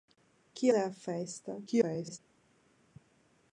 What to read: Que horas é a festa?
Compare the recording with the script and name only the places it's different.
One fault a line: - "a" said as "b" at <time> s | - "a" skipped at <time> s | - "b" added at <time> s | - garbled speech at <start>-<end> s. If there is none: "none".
- "horas" skipped at 0.7 s
- garbled speech at 1.7-2.2 s